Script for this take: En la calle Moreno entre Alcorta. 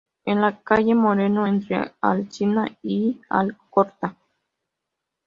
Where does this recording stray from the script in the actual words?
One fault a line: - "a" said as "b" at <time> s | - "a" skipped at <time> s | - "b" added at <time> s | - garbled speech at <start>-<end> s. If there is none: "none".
- "Alsina y" added at 2.0 s